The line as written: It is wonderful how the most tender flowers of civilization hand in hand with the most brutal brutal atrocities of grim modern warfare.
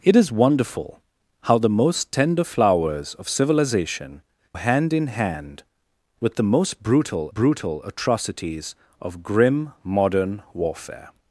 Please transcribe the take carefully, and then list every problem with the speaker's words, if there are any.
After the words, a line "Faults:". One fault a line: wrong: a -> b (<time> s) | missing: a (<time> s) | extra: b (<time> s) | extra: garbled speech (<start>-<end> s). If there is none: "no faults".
It is wonderful how the most tender flowers of civilization hand in hand with the most brutal brutal atrocities of grim modern warfare.
Faults:
no faults